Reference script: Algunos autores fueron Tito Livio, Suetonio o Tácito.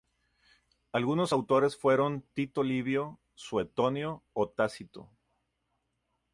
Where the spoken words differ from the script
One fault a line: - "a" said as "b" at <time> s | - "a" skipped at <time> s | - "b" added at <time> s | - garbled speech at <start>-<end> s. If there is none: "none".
none